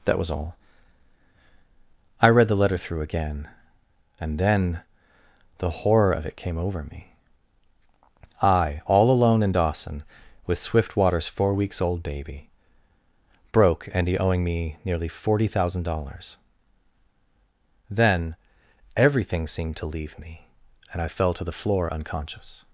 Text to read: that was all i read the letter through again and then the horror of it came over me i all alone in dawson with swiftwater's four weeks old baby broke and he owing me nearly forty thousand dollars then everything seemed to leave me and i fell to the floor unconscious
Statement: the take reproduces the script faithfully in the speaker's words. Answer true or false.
true